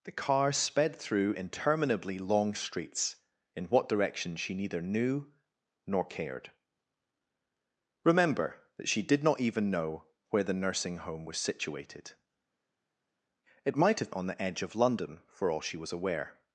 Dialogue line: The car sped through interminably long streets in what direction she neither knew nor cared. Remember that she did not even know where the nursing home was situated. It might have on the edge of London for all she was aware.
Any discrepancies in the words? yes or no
no